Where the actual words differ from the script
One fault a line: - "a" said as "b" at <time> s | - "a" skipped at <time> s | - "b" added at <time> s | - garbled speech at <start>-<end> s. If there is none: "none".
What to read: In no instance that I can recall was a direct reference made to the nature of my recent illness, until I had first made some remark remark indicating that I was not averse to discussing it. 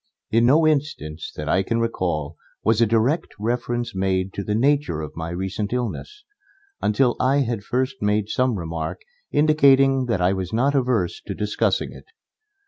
- "remark" skipped at 9.0 s